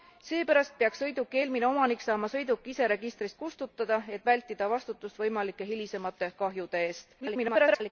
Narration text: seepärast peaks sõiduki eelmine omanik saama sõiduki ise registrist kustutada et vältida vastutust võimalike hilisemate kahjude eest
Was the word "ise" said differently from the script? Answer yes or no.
no